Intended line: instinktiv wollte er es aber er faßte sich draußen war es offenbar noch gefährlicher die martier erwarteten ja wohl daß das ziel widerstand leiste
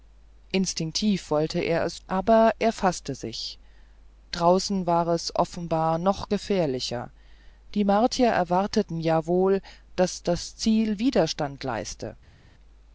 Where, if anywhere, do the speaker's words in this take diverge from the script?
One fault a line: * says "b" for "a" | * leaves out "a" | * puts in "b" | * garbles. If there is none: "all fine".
all fine